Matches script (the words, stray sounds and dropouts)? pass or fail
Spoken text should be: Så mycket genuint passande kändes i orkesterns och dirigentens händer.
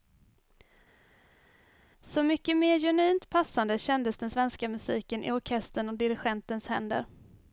fail